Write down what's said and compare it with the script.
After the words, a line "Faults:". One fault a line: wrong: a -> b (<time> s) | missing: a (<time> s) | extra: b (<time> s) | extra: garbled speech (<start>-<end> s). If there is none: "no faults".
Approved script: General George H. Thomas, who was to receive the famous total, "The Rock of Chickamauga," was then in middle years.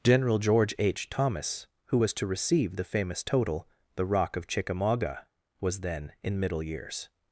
General George H. Thomas, who was to receive the famous total, "The Rock of Chickamauga," was then in middle years.
Faults:
no faults